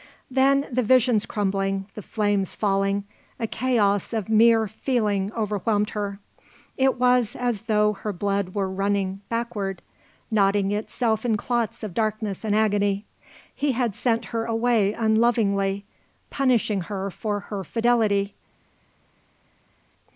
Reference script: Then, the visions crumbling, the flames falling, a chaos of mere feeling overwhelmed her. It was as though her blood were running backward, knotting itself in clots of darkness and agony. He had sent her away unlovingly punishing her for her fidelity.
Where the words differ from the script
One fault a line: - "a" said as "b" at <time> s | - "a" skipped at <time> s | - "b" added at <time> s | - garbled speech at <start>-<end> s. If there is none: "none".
none